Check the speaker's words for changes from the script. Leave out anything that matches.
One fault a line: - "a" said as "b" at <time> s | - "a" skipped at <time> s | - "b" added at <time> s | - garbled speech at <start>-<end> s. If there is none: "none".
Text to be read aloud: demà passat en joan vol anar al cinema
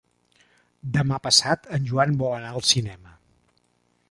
none